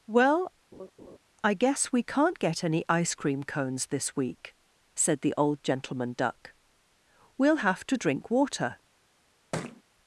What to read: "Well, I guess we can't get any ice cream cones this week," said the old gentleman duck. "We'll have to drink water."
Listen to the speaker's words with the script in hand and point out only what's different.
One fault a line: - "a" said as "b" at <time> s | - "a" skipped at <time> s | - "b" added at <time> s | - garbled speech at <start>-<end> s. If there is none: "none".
none